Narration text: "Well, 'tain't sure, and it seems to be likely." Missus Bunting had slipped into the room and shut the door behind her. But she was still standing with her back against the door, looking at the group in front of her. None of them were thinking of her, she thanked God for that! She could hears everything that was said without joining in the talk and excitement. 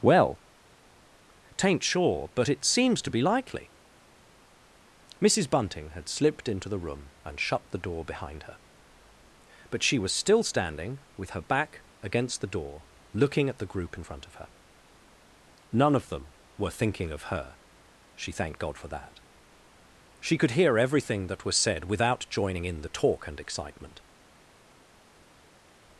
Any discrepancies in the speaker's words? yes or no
yes